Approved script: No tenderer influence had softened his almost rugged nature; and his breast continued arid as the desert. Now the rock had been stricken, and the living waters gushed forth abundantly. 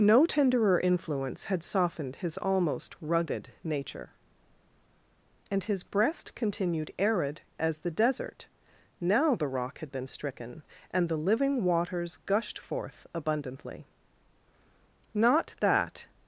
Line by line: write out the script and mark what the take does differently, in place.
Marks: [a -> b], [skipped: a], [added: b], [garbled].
No tenderer influence had softened his almost rugged nature; and his breast continued arid as the desert. Now the rock had been stricken, and the living waters gushed forth abundantly. [added: Not that]